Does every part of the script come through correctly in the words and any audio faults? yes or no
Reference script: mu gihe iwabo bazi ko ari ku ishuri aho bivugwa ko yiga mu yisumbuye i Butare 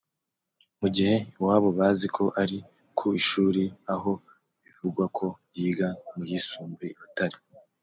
yes